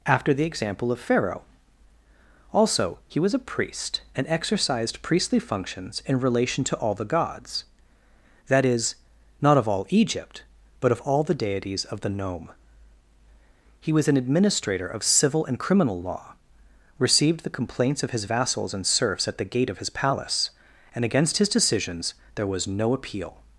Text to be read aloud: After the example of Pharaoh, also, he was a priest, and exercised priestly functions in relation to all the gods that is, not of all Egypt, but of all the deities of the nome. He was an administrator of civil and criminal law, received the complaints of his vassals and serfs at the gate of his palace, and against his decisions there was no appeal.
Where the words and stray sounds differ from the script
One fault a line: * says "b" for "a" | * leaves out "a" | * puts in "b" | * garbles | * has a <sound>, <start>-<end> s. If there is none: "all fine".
all fine